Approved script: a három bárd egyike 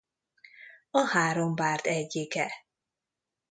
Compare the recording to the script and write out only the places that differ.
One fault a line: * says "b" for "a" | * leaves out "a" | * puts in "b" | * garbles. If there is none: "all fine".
all fine